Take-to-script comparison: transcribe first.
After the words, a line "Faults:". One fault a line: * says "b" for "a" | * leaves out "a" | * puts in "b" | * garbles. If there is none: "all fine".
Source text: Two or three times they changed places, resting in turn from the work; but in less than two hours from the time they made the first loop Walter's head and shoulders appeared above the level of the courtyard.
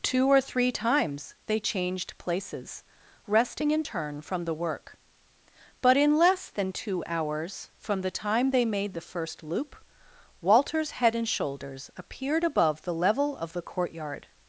Two or three times they changed places, resting in turn from the work; but in less than two hours from the time they made the first loop Walter's head and shoulders appeared above the level of the courtyard.
Faults:
all fine